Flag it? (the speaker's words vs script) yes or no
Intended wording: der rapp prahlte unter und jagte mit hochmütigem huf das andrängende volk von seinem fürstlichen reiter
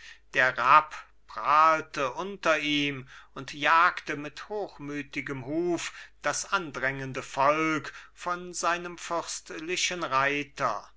yes